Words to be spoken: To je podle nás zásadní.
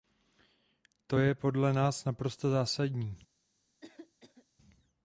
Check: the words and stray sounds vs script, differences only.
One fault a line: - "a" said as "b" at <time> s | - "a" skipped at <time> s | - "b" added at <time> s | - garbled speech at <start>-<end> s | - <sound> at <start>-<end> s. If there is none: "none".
- "naprosto" added at 2.0 s
- cough at 3.8-4.5 s